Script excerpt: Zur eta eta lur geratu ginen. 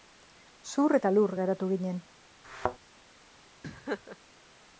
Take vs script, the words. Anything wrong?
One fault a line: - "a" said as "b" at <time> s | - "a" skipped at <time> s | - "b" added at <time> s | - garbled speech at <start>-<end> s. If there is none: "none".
- "eta" skipped at 1.1 s